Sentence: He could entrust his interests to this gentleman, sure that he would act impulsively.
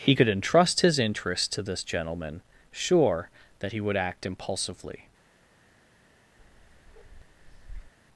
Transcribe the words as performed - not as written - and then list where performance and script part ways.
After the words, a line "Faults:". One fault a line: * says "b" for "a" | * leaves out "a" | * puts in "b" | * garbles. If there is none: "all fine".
He could entrust his interests to this gentleman, sure that he would act impulsively.
Faults:
all fine